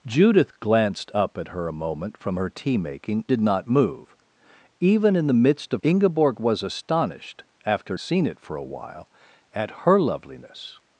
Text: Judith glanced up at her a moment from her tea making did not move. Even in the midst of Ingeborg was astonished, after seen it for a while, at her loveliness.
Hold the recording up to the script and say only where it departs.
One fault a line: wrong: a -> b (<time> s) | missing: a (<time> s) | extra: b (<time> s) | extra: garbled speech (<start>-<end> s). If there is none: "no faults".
no faults